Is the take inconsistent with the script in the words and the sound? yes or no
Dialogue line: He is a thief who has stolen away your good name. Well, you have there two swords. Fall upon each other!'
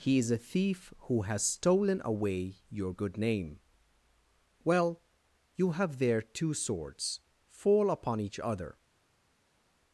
no